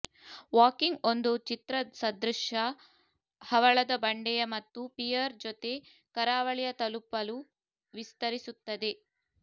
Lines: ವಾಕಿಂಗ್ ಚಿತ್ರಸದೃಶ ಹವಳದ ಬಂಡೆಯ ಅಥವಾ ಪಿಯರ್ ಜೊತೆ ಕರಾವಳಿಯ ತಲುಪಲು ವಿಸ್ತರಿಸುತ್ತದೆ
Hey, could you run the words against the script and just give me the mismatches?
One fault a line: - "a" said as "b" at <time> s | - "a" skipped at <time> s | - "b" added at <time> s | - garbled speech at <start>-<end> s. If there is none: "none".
- "ಒಂದು" added at 1.0 s
- "ಅಥವಾ" said as "ಮತ್ತು" at 4.5 s